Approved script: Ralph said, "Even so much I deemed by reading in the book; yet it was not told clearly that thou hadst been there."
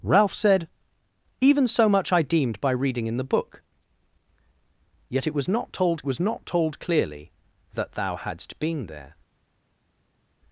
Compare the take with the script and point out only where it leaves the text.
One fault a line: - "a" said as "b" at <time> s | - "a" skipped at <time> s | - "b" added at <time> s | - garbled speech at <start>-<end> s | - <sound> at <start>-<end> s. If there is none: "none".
- "was not told" added at 6.1 s